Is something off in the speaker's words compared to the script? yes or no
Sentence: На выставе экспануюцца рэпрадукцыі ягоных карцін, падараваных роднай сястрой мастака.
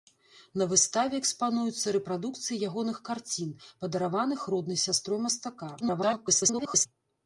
yes